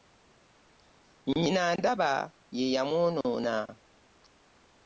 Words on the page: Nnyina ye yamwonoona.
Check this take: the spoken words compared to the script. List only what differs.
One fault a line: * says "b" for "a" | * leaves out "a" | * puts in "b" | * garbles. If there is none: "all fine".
* puts in "ndaba"